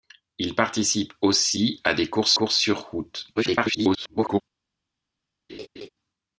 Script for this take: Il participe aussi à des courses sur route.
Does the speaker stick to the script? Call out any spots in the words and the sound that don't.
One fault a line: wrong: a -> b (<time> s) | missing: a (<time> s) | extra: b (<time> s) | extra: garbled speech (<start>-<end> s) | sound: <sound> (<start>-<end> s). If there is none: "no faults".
extra: courses (2.3 s)
extra: garbled speech (3.4-4.4 s)
sound: laugh (5.5-5.9 s)